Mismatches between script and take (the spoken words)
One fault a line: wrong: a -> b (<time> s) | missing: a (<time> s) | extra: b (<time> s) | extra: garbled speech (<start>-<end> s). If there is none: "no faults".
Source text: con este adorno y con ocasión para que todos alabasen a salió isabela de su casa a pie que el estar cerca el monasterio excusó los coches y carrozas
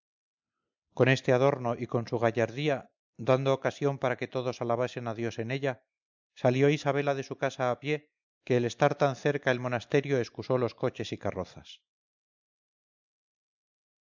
extra: su gallardía dando (2.1 s)
extra: dios en ella (5.1 s)
extra: tan (9.0 s)